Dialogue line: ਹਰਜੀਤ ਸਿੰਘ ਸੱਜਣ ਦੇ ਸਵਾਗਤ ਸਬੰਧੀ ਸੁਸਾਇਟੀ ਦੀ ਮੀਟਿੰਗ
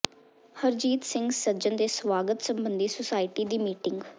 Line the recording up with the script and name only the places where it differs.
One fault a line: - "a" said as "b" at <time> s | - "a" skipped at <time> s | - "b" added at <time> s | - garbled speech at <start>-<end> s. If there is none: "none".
none